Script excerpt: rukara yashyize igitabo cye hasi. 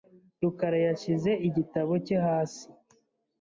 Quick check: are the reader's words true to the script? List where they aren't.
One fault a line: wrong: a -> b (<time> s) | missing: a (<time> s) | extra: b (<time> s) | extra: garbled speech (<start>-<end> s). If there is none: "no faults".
no faults